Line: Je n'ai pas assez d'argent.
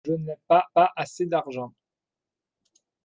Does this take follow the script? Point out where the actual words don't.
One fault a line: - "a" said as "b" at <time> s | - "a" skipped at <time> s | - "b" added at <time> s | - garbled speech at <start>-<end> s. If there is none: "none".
- "pas" added at 0.7 s